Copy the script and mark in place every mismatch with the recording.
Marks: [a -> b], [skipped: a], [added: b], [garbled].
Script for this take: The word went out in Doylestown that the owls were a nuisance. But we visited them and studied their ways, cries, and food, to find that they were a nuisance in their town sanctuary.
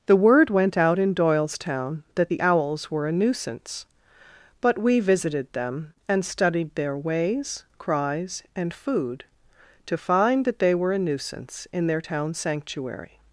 The word went out in Doylestown that the owls were a nuisance. But we visited them and studied their ways, cries, and food, to find that they were a nuisance in their town sanctuary.